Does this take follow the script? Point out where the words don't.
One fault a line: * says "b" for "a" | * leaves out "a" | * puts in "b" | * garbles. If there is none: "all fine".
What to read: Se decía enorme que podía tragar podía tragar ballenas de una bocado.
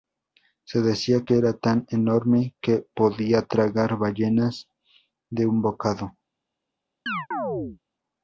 * puts in "que era tan"
* leaves out "podía tragar"
* says "un" for "una"